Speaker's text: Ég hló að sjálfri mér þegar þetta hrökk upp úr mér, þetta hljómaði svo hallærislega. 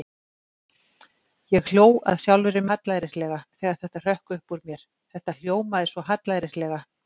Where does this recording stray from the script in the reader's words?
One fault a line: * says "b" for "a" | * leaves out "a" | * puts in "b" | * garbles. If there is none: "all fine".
* says "hallærislega" for "mér"